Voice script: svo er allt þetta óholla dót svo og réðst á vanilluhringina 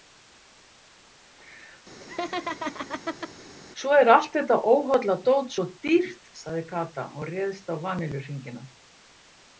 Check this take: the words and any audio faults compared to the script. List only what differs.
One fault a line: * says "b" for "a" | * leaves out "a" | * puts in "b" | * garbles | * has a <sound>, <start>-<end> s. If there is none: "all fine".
* has a laugh, 2.0-3.3 s
* puts in "dýrt sagði kata"